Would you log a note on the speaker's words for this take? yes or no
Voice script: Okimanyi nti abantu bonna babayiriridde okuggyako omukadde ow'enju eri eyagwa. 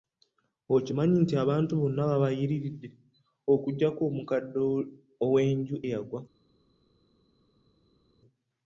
yes